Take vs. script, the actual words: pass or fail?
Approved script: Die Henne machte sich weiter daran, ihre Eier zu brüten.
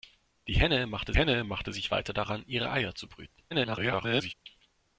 fail